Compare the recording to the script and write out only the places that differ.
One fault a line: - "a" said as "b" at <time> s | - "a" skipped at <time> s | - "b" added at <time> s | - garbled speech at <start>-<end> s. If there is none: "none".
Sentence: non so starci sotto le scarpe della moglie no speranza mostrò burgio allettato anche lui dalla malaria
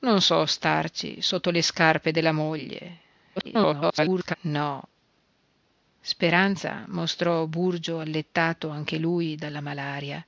- garbled speech at 3.4-4.3 s